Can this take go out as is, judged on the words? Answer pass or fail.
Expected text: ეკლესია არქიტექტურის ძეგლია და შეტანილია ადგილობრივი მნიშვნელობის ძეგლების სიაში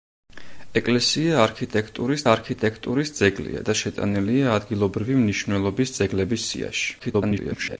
fail